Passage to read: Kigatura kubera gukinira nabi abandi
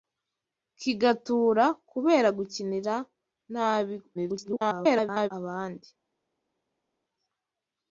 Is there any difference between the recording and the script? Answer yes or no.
yes